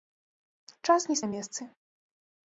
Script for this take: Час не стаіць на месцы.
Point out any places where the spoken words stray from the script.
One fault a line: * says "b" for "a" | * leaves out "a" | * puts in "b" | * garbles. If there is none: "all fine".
* leaves out "стаіць"